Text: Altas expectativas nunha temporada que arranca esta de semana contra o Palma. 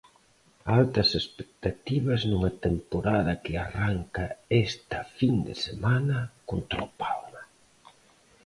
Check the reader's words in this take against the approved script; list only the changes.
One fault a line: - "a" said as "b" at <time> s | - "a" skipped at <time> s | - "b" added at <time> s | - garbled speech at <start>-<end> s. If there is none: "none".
- "fin" added at 5.2 s